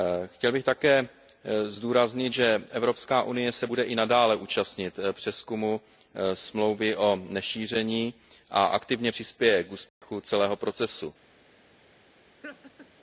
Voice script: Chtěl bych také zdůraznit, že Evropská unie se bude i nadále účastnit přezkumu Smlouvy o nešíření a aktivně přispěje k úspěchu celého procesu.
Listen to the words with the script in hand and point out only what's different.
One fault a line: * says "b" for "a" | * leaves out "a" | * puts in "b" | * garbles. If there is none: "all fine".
all fine